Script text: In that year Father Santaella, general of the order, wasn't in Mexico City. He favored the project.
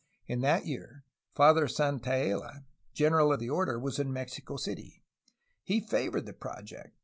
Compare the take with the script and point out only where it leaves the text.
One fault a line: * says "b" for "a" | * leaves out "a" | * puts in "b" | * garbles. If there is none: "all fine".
* says "was" for "wasn't"